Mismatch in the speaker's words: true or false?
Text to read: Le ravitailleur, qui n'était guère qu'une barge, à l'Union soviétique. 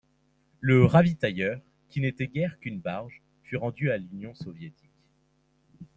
true